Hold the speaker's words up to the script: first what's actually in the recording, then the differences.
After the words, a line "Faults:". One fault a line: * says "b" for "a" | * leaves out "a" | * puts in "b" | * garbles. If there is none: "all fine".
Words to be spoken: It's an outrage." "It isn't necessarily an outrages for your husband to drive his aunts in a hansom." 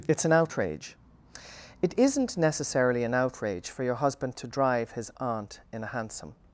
It's an outrage." "It isn't necessarily an outrage for your husband to drive his aunt in a hansom."
Faults:
* says "outrage" for "outrages"
* says "aunt" for "aunts"